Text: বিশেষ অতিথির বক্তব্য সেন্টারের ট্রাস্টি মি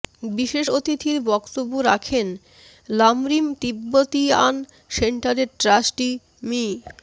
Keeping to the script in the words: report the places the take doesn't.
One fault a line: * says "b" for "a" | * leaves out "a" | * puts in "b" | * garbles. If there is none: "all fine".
* puts in "রাখেন লামরিম তিব্বতিয়ান"